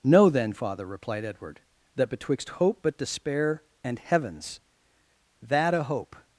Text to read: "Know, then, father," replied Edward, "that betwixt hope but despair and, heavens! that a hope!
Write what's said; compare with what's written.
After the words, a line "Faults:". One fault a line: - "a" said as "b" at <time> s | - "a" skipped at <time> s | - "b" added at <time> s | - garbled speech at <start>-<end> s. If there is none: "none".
"Know, then, father," replied Edward, "that betwixt hope but despair and, heavens! that a hope!
Faults:
none